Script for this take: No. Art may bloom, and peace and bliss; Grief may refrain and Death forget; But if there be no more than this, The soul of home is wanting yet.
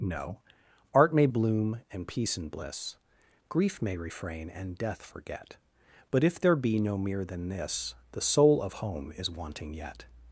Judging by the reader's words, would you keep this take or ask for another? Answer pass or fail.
fail